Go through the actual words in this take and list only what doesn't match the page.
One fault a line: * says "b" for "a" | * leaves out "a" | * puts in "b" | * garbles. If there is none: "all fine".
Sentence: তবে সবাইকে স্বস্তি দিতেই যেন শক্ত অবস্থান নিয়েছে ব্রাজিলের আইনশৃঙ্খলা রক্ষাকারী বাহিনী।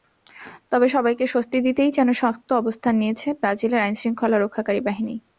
all fine